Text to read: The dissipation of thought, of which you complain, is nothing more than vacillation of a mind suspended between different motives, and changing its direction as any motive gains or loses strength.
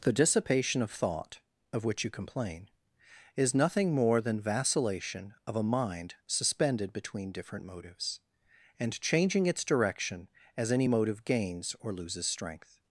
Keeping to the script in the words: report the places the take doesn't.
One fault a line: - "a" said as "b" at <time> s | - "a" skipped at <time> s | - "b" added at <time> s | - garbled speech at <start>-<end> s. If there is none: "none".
none